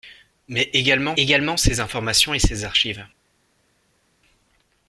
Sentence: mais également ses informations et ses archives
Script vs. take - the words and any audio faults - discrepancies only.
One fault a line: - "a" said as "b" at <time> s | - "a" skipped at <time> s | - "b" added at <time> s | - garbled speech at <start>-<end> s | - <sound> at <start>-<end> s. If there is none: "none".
- "également" added at 1.2 s